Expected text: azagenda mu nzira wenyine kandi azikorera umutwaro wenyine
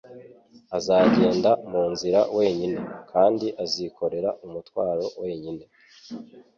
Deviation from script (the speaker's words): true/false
false